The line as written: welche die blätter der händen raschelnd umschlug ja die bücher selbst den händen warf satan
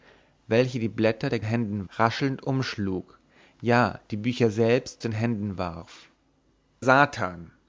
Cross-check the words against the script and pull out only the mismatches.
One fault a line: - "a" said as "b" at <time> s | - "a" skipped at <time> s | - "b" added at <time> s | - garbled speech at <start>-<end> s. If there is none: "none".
none